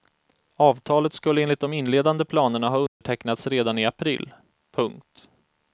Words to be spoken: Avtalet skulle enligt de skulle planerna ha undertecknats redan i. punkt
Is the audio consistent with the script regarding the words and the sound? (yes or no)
no